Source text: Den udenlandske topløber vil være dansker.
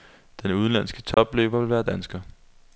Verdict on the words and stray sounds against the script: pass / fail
fail